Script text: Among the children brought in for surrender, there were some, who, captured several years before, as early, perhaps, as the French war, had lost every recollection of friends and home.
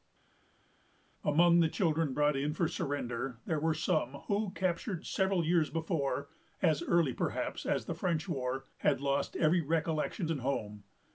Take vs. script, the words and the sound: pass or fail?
fail